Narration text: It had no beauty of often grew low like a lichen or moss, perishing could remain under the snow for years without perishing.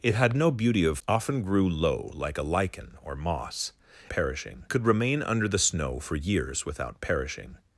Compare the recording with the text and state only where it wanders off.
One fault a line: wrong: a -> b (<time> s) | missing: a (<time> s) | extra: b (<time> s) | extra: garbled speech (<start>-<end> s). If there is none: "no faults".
no faults